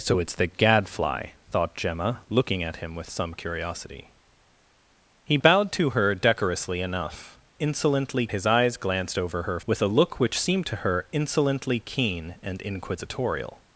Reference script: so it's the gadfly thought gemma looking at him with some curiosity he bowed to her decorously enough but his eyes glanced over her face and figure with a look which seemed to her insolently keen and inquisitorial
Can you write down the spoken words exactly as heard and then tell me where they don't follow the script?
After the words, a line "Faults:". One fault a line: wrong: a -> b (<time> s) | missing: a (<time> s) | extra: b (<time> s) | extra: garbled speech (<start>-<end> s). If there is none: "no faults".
so it's the gadfly thought gemma looking at him with some curiosity he bowed to her decorously enough insolently his eyes glanced over her with a look which seemed to her insolently keen and inquisitorial
Faults:
wrong: but -> insolently (7.6 s)
missing: face and figure (9.6 s)